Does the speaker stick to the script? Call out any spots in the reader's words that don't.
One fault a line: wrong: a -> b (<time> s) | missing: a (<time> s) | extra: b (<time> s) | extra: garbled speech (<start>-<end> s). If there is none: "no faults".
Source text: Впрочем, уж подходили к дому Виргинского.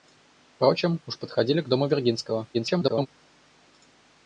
extra: garbled speech (2.5-3.1 s)